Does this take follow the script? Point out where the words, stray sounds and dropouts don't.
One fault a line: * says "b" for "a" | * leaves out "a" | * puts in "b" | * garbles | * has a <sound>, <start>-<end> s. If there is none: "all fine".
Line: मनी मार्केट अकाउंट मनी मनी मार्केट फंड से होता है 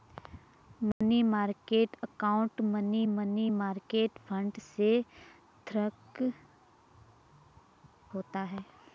* has a dropout, 0.9-1.0 s